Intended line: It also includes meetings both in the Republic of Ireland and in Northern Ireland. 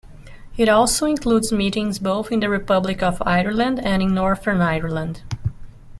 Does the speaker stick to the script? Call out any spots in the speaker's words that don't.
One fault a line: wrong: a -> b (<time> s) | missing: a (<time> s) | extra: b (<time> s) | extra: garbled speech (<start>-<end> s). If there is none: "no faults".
no faults